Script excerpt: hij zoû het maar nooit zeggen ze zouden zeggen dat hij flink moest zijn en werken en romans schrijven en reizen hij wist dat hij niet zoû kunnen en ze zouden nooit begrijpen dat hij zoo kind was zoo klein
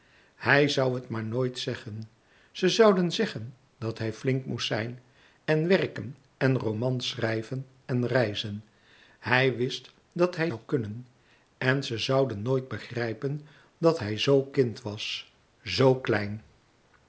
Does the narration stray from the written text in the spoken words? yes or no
yes